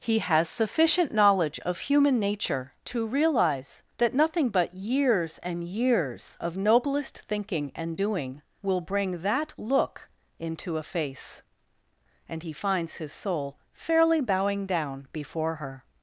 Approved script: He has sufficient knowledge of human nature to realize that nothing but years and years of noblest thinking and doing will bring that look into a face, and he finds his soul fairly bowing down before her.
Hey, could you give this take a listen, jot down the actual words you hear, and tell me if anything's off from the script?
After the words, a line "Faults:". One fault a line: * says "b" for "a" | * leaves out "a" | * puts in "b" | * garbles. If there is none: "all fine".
He has sufficient knowledge of human nature to realize that nothing but years and years of noblest thinking and doing will bring that look into a face, and he finds his soul fairly bowing down before her.
Faults:
all fine